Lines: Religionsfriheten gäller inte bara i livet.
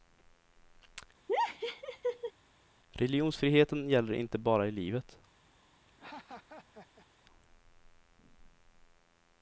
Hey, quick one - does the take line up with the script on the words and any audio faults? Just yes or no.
no